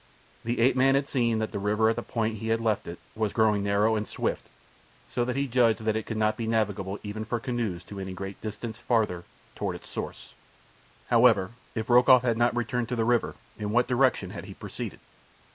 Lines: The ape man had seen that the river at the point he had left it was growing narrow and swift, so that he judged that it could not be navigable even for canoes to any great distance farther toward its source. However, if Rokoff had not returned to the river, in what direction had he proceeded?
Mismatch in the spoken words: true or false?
false